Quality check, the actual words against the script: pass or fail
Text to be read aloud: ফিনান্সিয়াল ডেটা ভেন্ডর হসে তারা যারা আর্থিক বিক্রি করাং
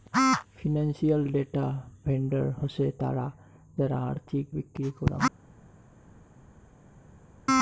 pass